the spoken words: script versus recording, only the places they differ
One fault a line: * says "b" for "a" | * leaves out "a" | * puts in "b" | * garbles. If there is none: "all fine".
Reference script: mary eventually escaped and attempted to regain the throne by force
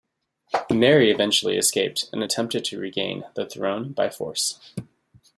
all fine